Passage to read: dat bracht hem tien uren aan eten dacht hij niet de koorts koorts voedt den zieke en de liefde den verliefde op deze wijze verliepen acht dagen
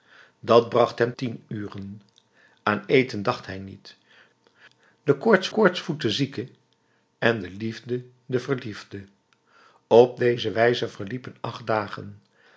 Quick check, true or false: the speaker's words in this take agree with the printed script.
true